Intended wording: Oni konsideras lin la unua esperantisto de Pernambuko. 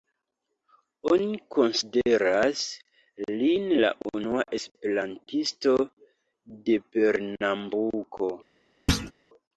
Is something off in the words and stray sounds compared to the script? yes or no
yes